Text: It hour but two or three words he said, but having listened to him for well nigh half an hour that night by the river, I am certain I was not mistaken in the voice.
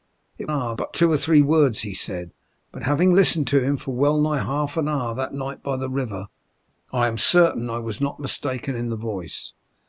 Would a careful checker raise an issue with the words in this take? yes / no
no